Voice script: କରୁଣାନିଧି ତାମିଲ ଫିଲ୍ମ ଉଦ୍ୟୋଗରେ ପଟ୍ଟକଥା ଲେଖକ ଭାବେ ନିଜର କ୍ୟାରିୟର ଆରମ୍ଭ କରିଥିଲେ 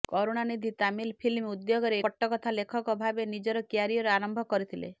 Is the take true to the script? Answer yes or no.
yes